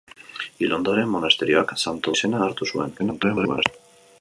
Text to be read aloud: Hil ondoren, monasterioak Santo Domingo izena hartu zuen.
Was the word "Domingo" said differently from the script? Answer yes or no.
yes